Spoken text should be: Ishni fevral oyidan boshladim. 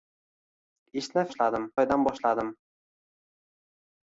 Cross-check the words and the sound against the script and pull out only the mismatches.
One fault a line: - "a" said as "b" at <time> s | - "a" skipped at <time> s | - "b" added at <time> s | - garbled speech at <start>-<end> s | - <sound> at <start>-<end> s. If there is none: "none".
- "fevral" said as "boshladim" at 1.3 s